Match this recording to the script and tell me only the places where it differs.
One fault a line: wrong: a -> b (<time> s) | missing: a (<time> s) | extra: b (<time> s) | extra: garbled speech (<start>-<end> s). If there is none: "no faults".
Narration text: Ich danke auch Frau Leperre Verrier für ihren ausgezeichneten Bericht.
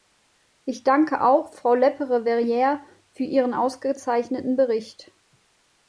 no faults